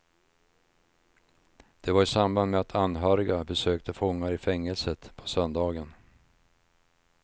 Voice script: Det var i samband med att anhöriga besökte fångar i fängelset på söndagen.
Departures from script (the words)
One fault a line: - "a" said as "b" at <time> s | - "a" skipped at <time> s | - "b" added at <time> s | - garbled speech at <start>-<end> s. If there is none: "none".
none